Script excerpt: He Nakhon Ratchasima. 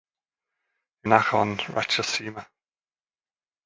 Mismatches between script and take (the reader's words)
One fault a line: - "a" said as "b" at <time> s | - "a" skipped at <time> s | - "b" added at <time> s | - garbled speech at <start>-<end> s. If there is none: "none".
none